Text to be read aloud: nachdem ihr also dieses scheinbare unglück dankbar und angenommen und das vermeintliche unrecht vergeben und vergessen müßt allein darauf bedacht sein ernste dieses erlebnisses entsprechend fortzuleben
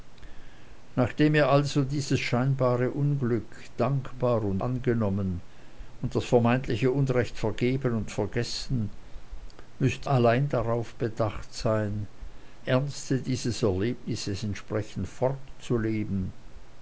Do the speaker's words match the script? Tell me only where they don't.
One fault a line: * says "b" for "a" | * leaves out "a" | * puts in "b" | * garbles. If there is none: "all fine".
all fine